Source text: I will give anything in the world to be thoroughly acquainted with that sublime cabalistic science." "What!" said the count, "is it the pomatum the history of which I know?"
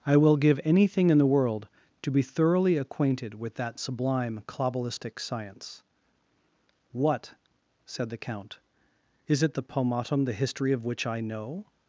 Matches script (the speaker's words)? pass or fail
pass